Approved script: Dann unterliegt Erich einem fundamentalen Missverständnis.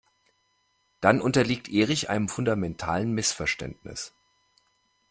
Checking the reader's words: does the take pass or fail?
pass